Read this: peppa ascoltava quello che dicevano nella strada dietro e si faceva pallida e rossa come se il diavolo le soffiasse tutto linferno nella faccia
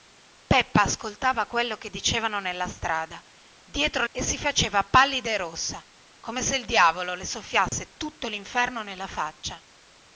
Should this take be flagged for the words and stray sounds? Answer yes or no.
yes